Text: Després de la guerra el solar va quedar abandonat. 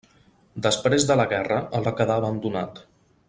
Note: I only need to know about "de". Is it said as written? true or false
true